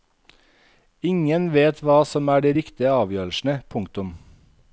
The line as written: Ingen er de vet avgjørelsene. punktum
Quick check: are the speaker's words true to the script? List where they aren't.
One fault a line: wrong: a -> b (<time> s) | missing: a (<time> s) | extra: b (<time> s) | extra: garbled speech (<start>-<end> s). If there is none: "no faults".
extra: vet hva som (1.6 s)
wrong: vet -> riktige (2.6 s)